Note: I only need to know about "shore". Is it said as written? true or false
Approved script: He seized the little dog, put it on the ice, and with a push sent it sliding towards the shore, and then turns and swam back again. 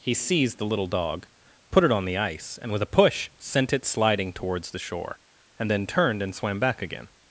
true